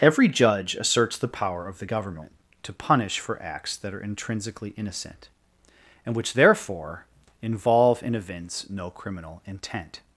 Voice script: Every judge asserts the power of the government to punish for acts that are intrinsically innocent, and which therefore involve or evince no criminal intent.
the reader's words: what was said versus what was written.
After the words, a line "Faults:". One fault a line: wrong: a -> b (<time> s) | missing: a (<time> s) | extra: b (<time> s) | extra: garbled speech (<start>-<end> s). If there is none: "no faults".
Every judge asserts the power of the government to punish for acts that are intrinsically innocent, and which therefore involve and evince no criminal intent.
Faults:
wrong: or -> and (8.0 s)